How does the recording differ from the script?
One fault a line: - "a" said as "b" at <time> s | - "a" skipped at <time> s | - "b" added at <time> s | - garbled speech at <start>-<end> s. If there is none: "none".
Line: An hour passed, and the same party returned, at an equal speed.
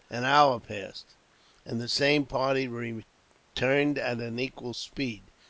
none